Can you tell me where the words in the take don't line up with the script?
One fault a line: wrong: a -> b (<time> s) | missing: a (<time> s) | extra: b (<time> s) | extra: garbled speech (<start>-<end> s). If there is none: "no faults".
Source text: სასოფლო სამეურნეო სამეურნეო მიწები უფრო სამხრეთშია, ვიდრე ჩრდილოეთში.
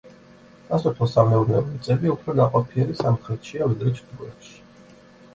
missing: სამეურნეო (1.6 s)
extra: ნაყოფიერი (2.4 s)